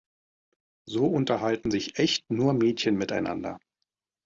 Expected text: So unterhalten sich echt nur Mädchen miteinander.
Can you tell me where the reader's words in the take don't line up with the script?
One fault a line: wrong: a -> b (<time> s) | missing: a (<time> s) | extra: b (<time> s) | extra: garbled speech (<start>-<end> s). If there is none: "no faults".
no faults